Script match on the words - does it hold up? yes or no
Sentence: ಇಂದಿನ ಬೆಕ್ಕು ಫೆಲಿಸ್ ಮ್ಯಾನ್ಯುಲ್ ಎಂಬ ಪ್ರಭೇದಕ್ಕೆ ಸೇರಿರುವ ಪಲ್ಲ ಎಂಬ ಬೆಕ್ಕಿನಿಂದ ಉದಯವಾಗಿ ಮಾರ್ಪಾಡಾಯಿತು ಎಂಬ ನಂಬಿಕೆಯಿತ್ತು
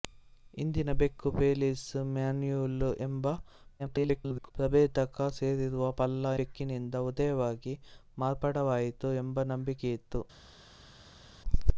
no